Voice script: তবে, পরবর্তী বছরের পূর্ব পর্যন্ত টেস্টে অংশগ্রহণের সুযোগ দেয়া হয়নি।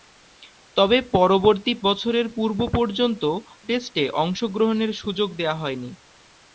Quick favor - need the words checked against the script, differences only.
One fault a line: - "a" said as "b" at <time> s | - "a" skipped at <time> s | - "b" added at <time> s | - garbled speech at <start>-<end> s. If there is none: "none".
none